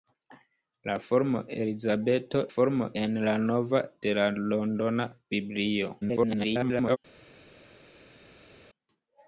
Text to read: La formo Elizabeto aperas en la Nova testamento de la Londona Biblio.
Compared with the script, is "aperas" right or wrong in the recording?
wrong